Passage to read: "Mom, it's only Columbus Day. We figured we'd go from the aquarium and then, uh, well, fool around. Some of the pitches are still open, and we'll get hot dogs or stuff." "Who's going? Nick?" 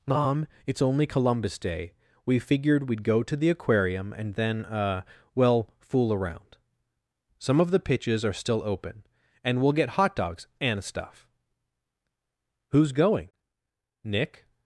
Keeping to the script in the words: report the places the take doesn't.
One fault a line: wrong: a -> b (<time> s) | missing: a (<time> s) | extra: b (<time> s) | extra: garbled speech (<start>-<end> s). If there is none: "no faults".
wrong: from -> to (3.2 s)
wrong: or -> and (10.6 s)